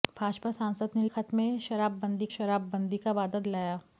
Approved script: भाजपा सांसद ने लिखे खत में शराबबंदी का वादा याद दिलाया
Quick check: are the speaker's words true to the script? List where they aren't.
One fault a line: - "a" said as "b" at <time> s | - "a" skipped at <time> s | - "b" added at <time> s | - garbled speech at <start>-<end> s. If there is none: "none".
- "लिखे" skipped at 1.0 s
- "शराबबंदी" added at 2.4 s
- "याद" skipped at 3.4 s